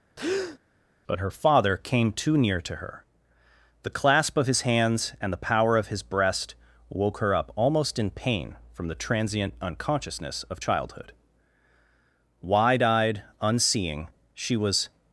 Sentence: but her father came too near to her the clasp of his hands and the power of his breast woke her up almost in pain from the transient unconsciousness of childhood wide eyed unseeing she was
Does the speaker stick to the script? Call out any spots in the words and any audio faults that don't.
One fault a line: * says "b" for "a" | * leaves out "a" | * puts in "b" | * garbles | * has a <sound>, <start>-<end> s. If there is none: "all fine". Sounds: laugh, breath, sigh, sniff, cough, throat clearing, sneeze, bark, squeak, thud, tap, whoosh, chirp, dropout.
* has a breath, 0.2-0.6 s